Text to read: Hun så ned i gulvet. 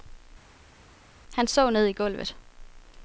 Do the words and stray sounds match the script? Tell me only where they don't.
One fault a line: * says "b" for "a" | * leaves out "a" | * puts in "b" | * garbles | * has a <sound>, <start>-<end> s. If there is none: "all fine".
* says "Han" for "Hun"